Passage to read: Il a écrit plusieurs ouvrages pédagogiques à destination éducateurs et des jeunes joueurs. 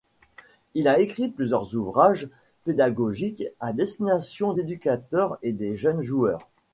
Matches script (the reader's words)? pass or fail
pass